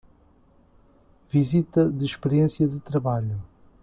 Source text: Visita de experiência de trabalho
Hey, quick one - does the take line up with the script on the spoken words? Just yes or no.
yes